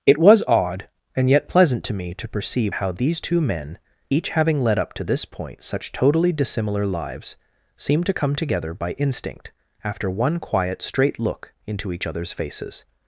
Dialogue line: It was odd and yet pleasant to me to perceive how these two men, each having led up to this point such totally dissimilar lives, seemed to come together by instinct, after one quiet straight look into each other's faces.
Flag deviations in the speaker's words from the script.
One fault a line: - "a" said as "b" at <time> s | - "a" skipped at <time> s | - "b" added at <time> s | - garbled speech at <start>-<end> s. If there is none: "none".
none